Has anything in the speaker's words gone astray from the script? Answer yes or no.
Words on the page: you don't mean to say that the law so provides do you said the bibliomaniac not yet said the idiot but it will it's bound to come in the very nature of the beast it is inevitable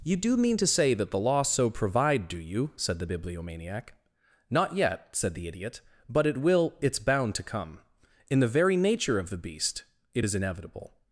yes